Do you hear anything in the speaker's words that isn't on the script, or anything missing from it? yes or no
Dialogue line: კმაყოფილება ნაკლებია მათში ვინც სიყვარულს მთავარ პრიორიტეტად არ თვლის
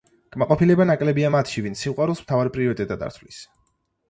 no